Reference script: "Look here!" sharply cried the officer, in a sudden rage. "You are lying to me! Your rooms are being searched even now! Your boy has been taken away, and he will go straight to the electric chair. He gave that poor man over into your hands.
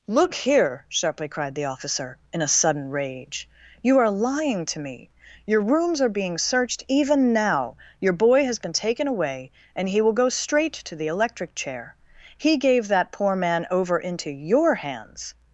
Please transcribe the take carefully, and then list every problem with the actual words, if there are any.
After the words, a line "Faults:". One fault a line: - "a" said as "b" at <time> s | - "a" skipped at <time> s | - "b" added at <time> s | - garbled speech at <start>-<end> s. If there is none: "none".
"Look here!" sharply cried the officer, in a sudden rage. "You are lying to me! Your rooms are being searched even now! Your boy has been taken away, and he will go straight to the electric chair. He gave that poor man over into your hands.
Faults:
none